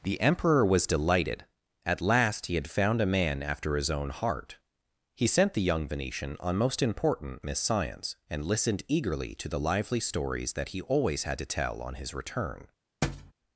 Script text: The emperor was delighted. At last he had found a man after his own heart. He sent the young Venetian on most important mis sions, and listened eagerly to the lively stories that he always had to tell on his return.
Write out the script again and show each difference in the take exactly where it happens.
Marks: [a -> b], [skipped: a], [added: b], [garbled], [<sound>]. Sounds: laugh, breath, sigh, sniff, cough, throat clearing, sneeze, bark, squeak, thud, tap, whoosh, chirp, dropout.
The emperor was delighted. At last he had found a man after his own heart. He sent the young Venetian on most important [mis sions, -> miss science] and listened eagerly to the lively stories that he always had to tell on his return. [thud]